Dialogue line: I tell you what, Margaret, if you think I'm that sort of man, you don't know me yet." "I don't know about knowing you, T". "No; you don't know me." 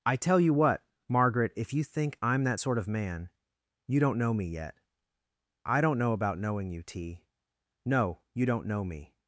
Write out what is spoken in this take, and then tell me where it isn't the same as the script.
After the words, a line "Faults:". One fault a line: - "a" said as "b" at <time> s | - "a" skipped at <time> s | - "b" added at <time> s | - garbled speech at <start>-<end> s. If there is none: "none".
I tell you what, Margaret, if you think I'm that sort of man, you don't know me yet." "I don't know about knowing you, T". "No; you don't know me."
Faults:
none